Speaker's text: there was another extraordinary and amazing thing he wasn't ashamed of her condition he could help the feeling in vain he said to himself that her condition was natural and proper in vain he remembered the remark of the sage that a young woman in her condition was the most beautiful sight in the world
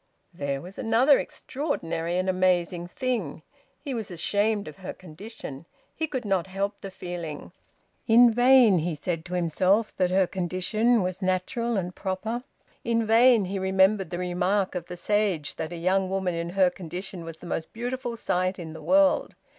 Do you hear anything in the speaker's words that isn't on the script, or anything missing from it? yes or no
yes